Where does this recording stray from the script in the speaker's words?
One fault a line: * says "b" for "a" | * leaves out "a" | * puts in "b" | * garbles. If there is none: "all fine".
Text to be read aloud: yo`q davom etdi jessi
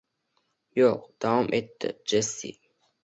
all fine